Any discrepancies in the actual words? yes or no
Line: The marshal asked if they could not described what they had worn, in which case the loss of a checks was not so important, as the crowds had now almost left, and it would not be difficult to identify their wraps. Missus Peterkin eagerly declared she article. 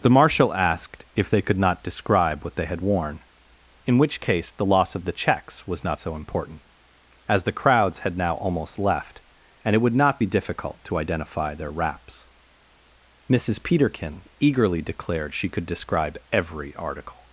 yes